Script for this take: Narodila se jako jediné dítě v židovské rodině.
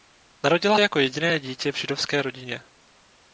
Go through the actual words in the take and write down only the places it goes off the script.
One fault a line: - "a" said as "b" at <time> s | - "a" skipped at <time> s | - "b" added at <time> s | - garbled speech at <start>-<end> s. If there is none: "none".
- "se" skipped at 0.8 s